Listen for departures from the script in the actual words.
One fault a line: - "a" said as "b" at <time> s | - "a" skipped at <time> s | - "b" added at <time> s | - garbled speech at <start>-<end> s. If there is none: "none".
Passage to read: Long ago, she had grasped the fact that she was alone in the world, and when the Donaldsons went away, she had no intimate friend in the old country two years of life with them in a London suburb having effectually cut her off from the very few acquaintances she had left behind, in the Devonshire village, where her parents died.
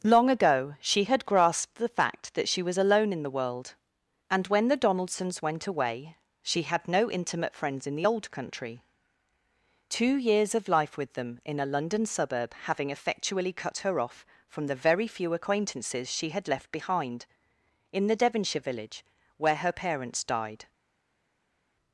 - "friend" said as "friends" at 7.5 s